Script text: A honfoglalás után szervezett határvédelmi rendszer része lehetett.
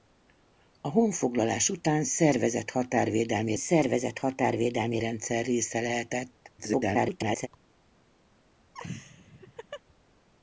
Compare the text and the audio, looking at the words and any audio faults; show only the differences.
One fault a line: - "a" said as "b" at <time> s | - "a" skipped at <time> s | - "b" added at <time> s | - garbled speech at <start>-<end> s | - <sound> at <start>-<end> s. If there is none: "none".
- "szervezett határvédelmi" added at 3.5 s
- garbled speech at 6.6-7.5 s
- laugh at 8.7-9.8 s